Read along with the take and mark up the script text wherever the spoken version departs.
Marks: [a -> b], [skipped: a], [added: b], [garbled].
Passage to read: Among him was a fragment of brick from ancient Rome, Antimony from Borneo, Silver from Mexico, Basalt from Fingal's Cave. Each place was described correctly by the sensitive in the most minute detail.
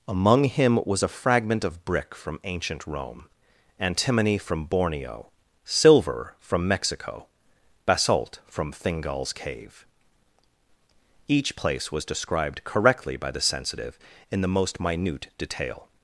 Among him was a fragment of brick from ancient Rome, Antimony from Borneo, Silver from Mexico, Basalt from Fingal's Cave. Each place was described correctly by the sensitive in the most minute detail.